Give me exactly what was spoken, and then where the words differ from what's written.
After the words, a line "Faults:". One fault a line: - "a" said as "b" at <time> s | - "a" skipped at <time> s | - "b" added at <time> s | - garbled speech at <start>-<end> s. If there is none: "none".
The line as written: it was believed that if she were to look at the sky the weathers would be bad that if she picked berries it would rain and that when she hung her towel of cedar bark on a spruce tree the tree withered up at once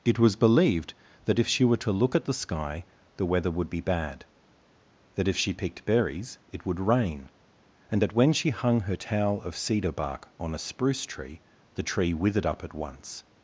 it was believed that if she were to look at the sky the weather would be bad that if she picked berries it would rain and that when she hung her towel of cedar bark on a spruce tree the tree withered up at once
Faults:
- "weathers" said as "weather" at 3.2 s